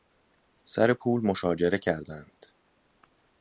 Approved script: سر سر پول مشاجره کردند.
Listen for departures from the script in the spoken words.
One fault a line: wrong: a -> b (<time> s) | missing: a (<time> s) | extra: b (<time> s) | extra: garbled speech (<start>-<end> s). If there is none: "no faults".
missing: سر (0.9 s)